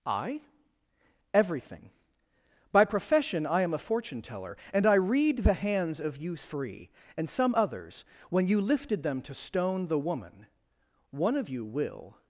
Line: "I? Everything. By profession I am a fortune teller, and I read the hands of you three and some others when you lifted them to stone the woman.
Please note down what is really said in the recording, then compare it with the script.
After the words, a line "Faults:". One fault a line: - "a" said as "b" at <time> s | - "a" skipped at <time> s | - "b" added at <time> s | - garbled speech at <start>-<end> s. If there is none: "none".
"I? Everything. By profession I am a fortune teller, and I read the hands of you three and some others when you lifted them to stone the woman. One of you will
Faults:
- "One of you will" added at 11.1 s